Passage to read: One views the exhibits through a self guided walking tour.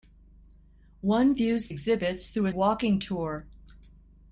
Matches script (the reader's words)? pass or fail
fail